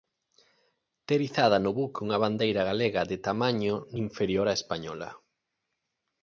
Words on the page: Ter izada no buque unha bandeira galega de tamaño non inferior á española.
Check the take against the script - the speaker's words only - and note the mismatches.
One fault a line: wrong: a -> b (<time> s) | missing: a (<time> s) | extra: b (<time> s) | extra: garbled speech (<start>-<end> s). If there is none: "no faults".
missing: non (3.8 s)